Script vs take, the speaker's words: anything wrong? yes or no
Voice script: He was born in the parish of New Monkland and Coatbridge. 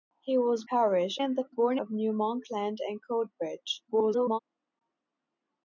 yes